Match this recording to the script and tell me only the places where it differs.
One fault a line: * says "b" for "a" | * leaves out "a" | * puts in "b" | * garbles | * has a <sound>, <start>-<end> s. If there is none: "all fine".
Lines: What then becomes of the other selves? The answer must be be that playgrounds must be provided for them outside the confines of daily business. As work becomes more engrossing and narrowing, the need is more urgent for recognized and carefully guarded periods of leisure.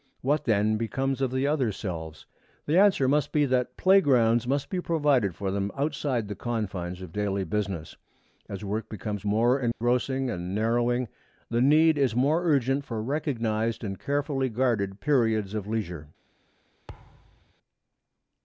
* leaves out "be"
* has a dropout, 9.7-9.8 s
* has a thud, 16.9-17.5 s